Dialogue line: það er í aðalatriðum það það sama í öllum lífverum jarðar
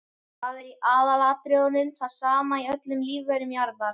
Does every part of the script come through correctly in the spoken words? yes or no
no